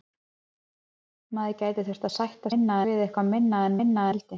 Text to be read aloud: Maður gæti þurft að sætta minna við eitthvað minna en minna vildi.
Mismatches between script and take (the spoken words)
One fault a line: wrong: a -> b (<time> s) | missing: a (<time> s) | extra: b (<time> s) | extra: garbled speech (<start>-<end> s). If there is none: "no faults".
no faults